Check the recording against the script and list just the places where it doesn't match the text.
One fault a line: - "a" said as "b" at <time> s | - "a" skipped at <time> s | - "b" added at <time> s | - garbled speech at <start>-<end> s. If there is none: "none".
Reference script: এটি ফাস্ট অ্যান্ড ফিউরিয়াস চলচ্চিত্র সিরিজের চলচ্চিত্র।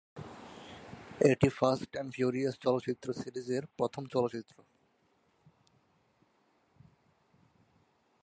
- "প্রথম" added at 3.8 s